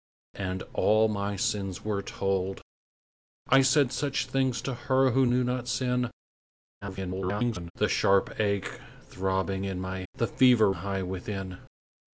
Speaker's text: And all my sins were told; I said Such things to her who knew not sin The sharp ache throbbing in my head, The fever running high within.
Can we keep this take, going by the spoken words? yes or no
no